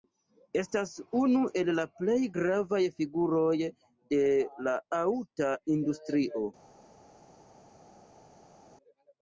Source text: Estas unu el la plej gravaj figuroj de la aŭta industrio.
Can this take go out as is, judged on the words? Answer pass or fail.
pass